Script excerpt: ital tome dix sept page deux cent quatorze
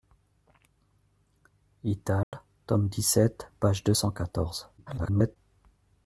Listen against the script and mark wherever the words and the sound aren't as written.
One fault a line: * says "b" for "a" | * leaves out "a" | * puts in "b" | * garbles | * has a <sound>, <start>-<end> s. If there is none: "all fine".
* has a dropout, 2.2-2.3 s
* garbles